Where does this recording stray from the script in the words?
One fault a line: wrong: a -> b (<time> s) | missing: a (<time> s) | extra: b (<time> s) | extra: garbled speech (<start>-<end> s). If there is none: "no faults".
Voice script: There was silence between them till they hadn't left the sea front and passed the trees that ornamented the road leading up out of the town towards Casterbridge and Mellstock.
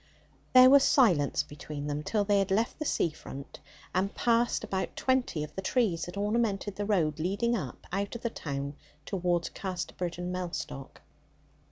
wrong: hadn't -> had (2.4 s)
extra: about twenty of (4.6 s)